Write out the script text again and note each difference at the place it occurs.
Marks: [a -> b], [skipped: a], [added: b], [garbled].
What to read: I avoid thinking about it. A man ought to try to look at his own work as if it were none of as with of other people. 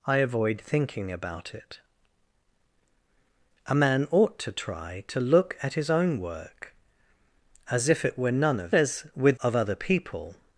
I avoid thinking about it. A man ought to try to look at his own work as if it were none of as with of other people.